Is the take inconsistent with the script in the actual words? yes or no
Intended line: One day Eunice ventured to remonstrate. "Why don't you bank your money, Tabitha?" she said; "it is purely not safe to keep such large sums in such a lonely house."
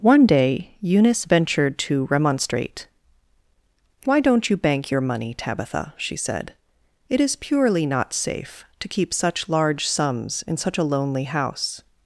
no